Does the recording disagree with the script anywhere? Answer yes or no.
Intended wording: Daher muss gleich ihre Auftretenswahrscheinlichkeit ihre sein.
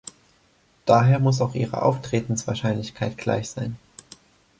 yes